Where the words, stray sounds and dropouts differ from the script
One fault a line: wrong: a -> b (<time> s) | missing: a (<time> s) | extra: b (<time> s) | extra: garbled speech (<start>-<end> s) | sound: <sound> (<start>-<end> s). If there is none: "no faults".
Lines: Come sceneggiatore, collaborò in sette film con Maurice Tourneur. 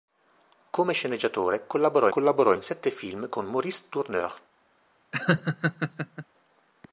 extra: collaborò (2.1 s)
sound: laugh (5.1-6.3 s)